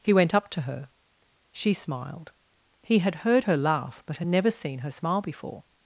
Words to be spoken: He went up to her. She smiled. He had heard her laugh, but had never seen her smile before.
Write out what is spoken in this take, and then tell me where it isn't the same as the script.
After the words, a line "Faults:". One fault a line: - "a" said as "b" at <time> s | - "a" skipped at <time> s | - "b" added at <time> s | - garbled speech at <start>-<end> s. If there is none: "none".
He went up to her. She smiled. He had heard her laugh, but had never seen her smile before.
Faults:
none